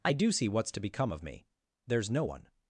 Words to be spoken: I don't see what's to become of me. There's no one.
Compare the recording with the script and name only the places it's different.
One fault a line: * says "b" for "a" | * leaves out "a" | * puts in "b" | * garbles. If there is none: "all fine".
* says "do" for "don't"